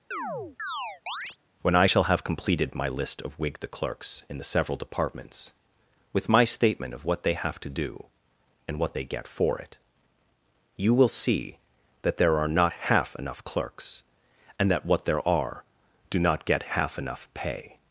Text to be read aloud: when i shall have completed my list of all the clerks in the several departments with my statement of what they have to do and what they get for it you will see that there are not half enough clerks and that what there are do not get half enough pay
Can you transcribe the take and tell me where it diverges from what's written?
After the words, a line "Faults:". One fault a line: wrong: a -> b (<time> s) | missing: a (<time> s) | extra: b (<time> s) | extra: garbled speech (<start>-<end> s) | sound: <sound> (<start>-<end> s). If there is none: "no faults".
when i shall have completed my list of whig the clerks in the several departments with my statement of what they have to do and what they get for it you will see that there are not half enough clerks and that what there are do not get half enough pay
Faults:
sound: chirp (0.1-1.4 s)
wrong: all -> whig (3.4 s)